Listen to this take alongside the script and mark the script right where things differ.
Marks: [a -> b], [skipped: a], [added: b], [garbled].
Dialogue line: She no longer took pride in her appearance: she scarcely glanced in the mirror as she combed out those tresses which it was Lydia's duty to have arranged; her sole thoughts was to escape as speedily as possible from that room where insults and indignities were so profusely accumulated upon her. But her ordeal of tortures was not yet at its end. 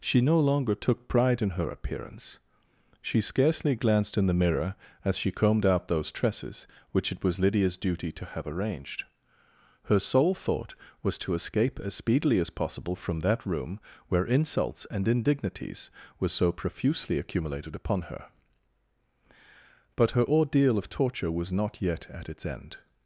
She no longer took pride in her appearance: she scarcely glanced in the mirror as she combed out those tresses which it was Lydia's duty to have arranged; her sole [thoughts -> thought] was to escape as speedily as possible from that room where insults and indignities were so profusely accumulated upon her. But her ordeal of [tortures -> torture] was not yet at its end.